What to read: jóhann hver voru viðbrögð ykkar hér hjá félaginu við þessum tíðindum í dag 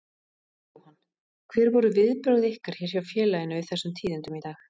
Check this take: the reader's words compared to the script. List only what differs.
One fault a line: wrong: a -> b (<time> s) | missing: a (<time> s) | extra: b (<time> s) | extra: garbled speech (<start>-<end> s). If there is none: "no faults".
no faults